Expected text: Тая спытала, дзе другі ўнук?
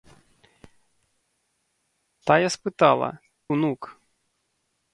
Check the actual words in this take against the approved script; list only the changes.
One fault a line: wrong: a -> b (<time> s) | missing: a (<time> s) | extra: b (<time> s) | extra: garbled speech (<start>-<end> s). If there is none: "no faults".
missing: дзе другі (3.1 s)